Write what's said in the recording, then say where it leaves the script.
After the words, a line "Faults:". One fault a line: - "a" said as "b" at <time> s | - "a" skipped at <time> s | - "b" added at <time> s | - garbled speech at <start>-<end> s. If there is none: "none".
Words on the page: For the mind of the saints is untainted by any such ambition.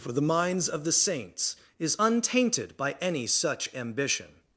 For the minds of the saints is untainted by any such ambition.
Faults:
- "mind" said as "minds" at 0.2 s